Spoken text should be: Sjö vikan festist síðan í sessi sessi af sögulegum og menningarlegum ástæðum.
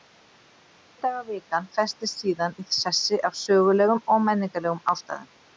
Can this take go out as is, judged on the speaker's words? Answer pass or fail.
fail